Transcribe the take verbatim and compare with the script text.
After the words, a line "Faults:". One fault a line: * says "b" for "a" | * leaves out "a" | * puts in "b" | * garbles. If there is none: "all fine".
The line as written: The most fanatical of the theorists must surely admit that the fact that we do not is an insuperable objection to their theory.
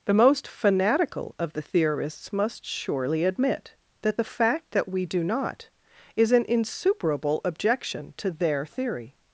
The most fanatical of the theorists must surely admit that the fact that we do not is an insuperable objection to their theory.
Faults:
all fine